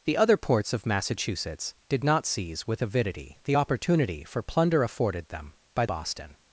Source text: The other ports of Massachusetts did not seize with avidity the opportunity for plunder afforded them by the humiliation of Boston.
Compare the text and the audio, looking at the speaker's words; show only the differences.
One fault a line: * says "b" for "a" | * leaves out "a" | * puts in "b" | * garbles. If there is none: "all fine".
* leaves out "the humiliation of"